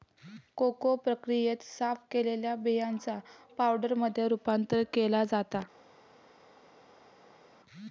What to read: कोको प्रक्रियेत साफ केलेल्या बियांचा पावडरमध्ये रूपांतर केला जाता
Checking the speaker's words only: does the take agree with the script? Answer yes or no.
yes